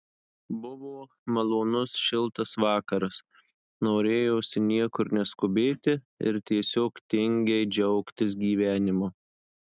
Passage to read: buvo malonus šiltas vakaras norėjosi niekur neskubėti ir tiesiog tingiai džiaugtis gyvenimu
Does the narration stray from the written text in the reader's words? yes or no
no